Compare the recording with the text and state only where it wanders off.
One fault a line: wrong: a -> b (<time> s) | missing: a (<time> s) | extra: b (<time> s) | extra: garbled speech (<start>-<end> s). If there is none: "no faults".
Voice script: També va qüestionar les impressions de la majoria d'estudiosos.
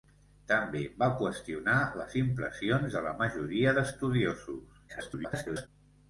extra: garbled speech (4.9-5.7 s)